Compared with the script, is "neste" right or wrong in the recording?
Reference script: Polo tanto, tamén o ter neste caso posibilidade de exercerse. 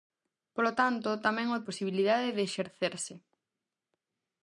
wrong